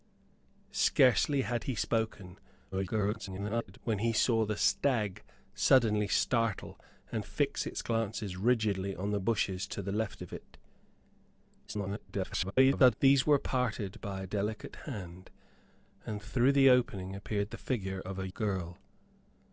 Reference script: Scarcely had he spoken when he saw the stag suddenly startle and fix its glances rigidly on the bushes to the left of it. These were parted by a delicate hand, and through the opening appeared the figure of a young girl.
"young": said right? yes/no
no